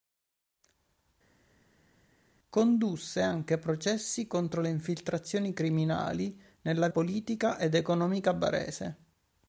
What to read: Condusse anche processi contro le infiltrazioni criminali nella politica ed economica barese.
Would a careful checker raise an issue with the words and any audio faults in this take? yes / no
no